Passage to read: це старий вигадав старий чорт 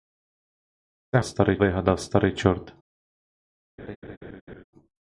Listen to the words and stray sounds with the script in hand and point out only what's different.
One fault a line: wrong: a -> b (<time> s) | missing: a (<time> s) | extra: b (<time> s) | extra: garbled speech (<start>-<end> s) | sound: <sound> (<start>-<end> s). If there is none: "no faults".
sound: laugh (3.8-4.6 s)